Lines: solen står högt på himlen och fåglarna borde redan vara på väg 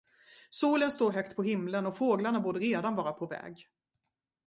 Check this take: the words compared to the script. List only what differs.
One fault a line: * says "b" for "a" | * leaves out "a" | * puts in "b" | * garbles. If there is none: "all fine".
all fine